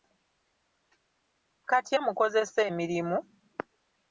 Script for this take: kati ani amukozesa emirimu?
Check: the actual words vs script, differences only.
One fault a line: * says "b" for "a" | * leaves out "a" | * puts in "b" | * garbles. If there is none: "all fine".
* leaves out "ani"